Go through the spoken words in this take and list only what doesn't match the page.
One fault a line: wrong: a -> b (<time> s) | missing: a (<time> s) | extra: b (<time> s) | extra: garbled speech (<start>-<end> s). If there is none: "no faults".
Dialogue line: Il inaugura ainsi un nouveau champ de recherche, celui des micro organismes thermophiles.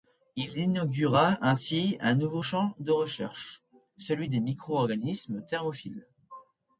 no faults